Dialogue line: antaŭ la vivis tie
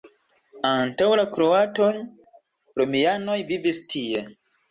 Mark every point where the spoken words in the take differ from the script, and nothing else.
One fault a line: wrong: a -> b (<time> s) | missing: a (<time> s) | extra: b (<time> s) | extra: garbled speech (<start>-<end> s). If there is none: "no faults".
extra: kroatoj romianoj (1.4 s)